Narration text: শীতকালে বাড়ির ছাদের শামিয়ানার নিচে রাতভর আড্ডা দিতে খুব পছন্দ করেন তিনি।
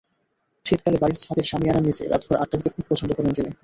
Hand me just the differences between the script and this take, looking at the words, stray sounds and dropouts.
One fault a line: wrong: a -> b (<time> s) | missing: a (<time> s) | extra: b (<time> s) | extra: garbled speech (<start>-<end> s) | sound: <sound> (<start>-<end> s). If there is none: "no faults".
no faults